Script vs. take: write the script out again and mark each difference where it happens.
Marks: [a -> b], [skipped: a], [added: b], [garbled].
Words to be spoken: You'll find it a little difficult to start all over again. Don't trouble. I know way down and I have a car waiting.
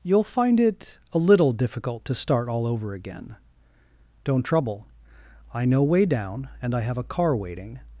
You'll find it a little difficult to start all over again. Don't trouble. I know way down and I have a car waiting.